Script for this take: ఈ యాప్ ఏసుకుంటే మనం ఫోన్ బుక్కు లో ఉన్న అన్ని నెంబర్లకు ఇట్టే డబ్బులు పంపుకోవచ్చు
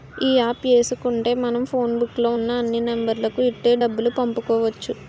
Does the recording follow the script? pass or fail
pass